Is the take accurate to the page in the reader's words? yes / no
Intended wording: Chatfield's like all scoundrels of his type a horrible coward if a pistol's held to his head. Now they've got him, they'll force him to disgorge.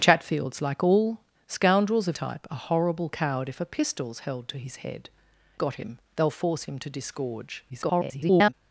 no